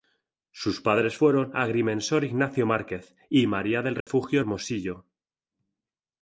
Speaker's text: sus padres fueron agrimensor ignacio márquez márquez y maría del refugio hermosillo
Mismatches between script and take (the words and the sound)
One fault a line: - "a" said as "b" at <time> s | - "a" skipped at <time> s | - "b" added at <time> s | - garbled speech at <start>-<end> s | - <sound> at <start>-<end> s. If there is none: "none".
- "márquez" skipped at 3.2 s
- dropout at 4.0-4.1 s